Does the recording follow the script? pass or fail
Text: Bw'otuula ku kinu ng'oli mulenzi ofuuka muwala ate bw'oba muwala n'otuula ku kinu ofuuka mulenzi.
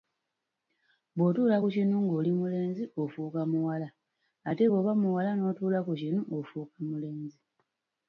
pass